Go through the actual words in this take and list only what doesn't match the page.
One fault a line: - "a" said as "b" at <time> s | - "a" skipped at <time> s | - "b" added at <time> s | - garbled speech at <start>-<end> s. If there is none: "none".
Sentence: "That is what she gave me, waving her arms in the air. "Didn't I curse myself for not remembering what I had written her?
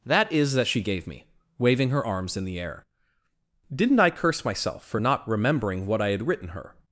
- "what" said as "that" at 0.5 s